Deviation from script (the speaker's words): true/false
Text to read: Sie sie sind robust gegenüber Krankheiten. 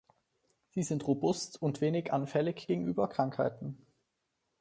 true